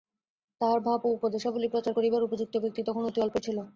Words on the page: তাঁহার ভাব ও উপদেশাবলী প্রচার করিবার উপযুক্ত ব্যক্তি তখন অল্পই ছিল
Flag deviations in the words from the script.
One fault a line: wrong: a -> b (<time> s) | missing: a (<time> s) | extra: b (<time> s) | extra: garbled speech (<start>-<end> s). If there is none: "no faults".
extra: অতি (3.0 s)